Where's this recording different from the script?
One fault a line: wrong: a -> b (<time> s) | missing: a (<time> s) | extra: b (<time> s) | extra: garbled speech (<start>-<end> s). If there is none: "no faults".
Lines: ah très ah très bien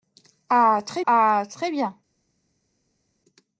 no faults